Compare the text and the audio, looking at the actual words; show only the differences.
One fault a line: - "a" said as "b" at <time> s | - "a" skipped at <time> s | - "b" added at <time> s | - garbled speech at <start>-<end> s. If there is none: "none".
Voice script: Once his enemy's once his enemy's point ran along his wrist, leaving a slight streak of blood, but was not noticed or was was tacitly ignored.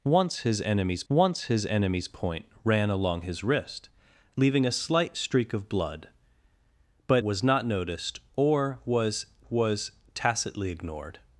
none